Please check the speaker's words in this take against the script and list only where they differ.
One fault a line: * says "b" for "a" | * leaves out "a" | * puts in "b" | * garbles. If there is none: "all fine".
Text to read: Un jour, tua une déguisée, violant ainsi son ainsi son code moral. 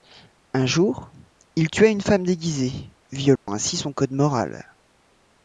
* puts in "il"
* puts in "femme"
* leaves out "ainsi son"